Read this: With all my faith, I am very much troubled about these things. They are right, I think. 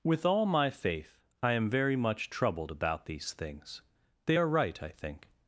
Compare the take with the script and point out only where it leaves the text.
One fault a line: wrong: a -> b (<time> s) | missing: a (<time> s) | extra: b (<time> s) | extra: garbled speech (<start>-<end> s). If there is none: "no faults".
no faults